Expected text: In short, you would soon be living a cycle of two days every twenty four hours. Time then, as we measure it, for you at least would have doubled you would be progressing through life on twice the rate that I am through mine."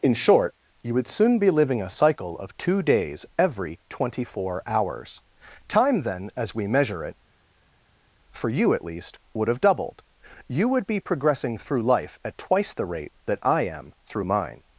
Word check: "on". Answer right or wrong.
wrong